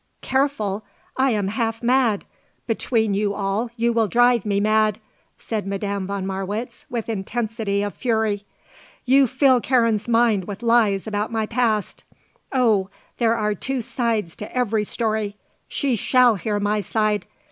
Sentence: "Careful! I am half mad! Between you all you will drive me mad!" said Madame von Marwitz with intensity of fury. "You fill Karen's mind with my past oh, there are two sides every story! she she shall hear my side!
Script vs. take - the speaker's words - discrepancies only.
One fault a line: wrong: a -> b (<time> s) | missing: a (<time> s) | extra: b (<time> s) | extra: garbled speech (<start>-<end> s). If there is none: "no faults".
extra: lies about (10.6 s)
extra: to (14.4 s)
missing: she (15.9 s)